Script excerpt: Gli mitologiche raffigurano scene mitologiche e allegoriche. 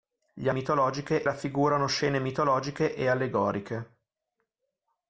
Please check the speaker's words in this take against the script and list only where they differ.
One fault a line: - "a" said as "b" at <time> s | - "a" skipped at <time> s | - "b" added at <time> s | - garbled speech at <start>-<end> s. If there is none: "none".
none